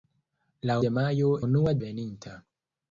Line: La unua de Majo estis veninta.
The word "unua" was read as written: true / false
false